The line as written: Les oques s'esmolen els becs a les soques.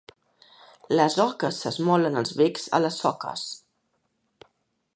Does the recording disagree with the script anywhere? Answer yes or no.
no